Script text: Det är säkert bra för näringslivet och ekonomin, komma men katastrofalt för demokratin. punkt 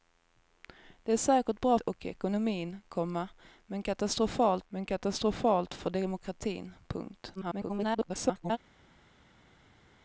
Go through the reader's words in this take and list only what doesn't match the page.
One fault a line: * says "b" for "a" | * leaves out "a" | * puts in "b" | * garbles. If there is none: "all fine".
* leaves out "för näringslivet"
* puts in "men katastrofalt"
* garbles